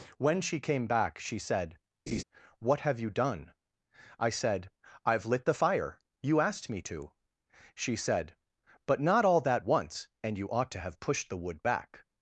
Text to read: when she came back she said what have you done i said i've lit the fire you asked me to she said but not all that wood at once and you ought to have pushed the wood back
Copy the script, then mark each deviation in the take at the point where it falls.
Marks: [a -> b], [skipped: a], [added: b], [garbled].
when she came back she said what have you done i said i've lit the fire you asked me to she said but not all that [skipped: wood at] once and you ought to have pushed the wood back